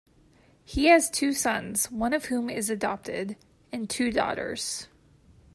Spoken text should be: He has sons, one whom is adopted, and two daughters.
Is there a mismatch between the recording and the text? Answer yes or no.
yes